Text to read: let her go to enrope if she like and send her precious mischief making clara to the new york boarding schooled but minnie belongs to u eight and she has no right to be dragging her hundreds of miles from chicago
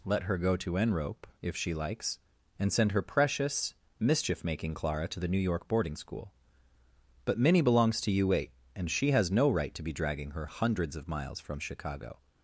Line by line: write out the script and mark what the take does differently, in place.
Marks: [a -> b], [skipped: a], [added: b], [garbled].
let her go to enrope if she [like -> likes] and send her precious mischief making clara to the new york boarding [schooled -> school] but minnie belongs to u eight and she has no right to be dragging her hundreds of miles from chicago